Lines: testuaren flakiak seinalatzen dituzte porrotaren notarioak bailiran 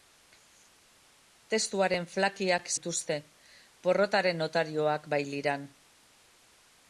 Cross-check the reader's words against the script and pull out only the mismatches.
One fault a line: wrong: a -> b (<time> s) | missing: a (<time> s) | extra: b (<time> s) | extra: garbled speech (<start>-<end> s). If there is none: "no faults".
missing: seinalatzen (2.7 s)